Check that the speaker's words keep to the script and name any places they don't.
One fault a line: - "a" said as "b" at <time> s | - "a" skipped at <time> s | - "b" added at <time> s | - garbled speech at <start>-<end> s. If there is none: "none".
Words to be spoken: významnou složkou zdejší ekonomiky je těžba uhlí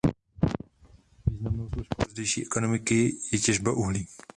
none